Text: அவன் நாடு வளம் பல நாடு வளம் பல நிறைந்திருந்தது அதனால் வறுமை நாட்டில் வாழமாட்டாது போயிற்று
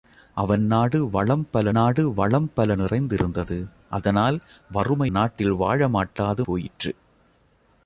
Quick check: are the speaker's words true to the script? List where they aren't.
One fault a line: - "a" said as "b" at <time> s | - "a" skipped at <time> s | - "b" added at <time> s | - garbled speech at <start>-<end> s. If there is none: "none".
none